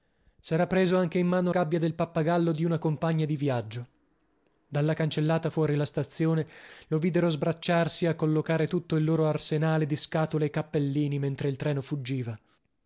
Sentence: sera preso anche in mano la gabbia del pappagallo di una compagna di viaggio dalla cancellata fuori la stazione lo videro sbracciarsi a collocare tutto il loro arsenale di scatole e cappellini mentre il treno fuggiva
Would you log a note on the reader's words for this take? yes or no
yes